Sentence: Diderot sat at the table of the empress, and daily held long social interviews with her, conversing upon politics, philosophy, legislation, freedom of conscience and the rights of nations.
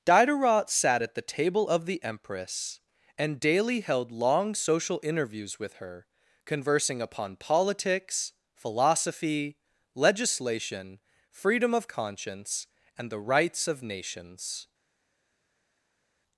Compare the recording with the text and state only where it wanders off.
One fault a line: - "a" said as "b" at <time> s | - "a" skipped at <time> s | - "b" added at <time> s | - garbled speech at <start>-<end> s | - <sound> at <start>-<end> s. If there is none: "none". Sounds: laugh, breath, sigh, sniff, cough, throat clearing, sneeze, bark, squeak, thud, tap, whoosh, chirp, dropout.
none